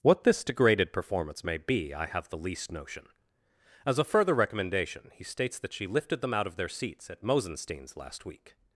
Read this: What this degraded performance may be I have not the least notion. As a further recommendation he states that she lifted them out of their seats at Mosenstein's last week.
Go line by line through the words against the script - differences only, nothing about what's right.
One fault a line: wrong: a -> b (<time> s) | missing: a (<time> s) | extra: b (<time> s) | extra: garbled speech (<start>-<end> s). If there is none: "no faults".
missing: not (2.3 s)